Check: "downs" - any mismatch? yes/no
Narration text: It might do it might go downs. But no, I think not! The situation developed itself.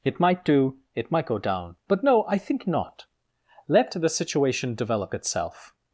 yes